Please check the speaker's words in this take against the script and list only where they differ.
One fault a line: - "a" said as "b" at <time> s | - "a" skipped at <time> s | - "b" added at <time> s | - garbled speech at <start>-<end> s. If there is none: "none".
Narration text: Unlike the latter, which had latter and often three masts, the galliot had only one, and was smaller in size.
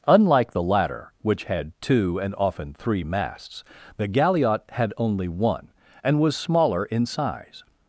- "latter" said as "two" at 1.8 s